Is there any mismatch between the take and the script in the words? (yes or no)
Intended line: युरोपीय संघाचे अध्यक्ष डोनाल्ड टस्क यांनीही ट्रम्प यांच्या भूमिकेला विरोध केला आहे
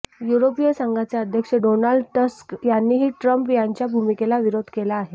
no